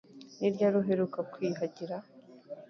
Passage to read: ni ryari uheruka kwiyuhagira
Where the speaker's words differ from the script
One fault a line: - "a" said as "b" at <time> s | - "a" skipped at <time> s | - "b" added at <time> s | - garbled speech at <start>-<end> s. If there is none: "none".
none